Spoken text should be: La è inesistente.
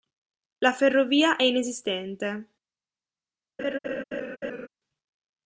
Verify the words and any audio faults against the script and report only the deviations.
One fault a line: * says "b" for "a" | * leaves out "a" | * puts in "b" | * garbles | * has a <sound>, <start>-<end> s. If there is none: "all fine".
* puts in "ferrovia"
* has a laugh, 3.6-4.7 s